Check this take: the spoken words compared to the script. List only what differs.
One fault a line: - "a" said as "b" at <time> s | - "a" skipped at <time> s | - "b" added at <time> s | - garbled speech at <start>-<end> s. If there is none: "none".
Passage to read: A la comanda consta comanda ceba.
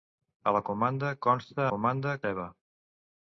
none